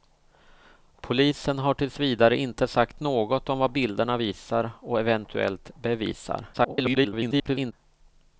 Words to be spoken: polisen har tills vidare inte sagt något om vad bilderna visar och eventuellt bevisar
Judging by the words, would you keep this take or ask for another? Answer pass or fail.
fail